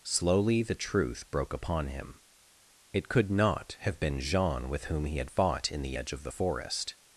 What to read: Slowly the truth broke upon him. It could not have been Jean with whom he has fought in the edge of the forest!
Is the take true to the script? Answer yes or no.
no